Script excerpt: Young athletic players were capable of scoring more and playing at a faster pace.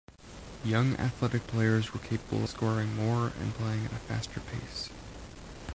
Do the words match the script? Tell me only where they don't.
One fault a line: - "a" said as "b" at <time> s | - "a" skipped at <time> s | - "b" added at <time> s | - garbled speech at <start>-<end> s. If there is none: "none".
- "of" skipped at 2.5 s